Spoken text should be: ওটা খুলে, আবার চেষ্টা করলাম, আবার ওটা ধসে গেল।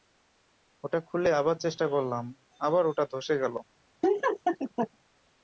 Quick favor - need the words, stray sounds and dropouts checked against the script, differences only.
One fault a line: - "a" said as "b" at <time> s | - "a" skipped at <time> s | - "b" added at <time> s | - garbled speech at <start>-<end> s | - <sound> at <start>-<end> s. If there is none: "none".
- laugh at 4.0-4.9 s